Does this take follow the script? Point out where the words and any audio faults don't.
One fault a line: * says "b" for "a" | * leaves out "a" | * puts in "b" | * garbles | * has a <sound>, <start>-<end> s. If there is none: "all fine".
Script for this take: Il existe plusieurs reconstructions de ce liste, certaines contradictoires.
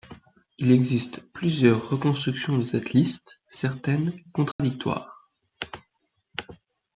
* says "cette" for "ce"
* has a dropout, 4.5-4.6 s